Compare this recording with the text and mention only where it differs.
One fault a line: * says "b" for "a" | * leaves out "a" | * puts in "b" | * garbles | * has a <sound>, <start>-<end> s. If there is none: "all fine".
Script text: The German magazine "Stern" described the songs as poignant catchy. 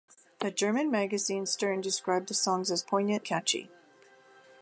all fine